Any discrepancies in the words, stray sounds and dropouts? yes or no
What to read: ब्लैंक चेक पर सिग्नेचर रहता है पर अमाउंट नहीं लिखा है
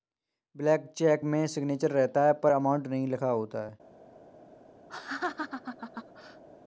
yes